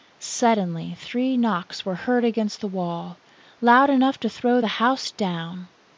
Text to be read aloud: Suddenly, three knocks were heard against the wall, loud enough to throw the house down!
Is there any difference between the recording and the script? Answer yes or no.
no